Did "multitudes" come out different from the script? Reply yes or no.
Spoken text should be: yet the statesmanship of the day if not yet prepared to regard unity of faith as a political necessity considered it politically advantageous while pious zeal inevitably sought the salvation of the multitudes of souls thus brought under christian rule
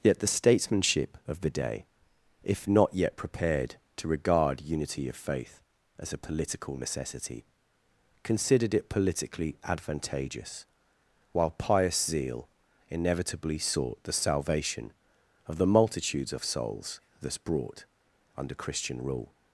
no